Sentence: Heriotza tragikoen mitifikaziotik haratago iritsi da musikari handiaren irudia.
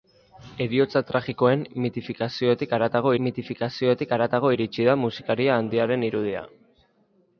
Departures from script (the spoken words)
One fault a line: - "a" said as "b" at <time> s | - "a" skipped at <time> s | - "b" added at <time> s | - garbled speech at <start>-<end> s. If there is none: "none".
- "mitifikaziotik haratago" added at 3.2 s